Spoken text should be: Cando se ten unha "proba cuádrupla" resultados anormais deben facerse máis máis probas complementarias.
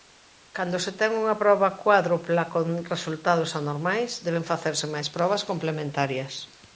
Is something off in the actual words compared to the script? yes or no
yes